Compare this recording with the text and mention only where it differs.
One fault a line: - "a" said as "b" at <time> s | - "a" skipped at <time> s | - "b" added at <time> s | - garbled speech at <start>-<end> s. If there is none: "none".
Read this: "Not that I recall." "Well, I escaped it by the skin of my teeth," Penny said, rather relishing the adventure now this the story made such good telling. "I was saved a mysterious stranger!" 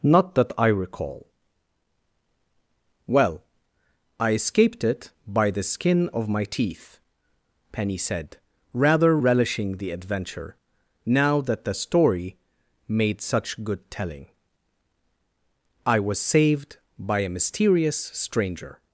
- "this" said as "that" at 11.4 s
- "by" added at 17.0 s